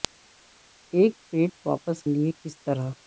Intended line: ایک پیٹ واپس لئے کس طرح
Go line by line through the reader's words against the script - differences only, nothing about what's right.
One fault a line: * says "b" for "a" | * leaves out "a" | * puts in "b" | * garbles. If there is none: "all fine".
all fine